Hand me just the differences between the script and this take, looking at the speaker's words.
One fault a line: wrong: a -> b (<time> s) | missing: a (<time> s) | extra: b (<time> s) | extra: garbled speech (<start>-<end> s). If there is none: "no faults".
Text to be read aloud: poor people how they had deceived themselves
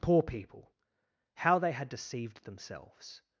no faults